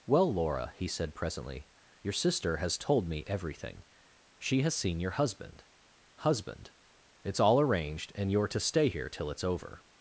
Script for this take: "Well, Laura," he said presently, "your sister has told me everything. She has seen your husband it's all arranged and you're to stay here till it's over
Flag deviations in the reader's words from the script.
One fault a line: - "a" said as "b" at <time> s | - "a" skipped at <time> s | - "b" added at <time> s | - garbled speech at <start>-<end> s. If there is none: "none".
- "husband" added at 6.2 s